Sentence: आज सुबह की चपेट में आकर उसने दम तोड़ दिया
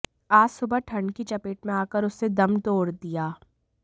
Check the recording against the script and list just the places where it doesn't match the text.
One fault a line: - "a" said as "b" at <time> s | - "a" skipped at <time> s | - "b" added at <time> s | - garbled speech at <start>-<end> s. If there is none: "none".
- "ठंड" added at 0.8 s